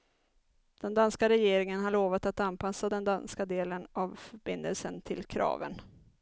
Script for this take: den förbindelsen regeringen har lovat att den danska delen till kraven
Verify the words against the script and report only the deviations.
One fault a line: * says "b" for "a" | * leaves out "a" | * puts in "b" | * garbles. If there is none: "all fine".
* says "danska" for "förbindelsen"
* puts in "anpassa"
* puts in "av förbindelsen"